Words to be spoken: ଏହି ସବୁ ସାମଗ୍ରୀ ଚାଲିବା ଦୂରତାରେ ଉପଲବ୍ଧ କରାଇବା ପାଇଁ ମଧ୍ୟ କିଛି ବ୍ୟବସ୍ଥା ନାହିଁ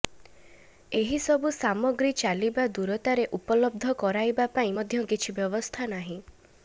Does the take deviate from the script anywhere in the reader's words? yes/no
no